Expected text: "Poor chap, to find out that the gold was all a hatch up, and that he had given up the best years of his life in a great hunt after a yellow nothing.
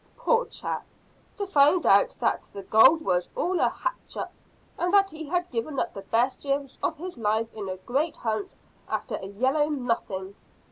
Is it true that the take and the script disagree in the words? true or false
false